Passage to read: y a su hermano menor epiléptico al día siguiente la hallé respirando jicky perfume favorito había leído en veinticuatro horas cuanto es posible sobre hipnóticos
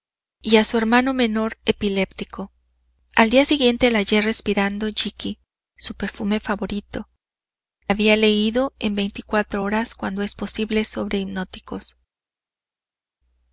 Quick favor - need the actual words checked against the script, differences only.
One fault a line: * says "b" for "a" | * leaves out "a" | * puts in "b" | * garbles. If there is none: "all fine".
* puts in "su"